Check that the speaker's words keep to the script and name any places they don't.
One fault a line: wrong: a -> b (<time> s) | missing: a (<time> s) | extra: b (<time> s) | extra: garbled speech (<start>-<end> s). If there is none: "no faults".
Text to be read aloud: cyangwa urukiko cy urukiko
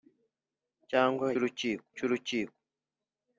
no faults